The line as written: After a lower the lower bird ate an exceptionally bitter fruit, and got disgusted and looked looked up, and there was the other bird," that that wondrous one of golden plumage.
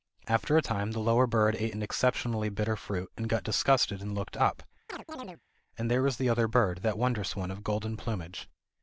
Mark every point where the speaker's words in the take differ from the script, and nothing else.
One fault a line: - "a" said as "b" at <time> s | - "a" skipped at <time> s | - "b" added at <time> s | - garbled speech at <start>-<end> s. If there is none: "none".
- "lower" said as "time" at 0.6 s
- "looked" skipped at 4.3 s
- "that" skipped at 7.0 s